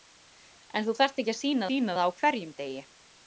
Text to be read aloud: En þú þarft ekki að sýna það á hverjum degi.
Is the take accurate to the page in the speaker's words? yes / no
no